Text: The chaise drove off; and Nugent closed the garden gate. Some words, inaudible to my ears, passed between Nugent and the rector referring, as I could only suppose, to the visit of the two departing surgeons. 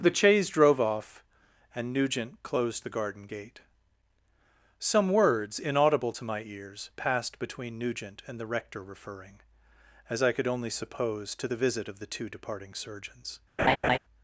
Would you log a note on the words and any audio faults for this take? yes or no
yes